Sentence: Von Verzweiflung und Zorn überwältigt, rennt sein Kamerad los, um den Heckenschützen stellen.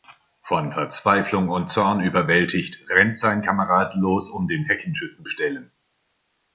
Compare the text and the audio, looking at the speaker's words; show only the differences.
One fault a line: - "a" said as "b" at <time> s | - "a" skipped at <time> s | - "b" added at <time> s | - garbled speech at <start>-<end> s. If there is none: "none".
none